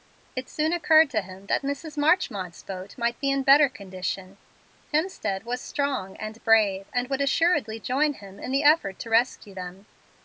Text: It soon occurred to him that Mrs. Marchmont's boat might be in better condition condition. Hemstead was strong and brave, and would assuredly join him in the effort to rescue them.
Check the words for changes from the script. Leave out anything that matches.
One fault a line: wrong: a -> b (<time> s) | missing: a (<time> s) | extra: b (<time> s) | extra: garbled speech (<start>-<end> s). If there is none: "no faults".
missing: condition (4.4 s)